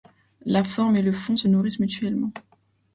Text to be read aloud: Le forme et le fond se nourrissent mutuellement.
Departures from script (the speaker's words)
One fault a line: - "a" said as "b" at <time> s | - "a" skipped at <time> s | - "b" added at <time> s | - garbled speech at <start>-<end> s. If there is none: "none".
- "Le" said as "La" at 0.5 s